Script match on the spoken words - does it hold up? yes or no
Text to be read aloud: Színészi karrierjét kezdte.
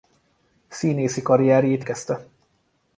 yes